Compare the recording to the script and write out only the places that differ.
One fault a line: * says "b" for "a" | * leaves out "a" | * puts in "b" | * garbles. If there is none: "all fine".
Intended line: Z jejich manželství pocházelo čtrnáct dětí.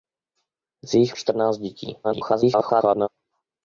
* leaves out "manželství pocházelo"
* garbles